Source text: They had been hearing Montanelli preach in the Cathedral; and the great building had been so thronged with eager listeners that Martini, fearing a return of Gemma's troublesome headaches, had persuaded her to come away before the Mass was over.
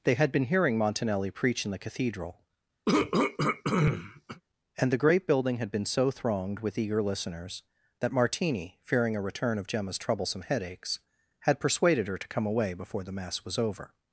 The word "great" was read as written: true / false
true